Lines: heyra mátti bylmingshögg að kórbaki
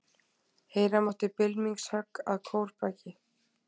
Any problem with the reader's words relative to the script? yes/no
no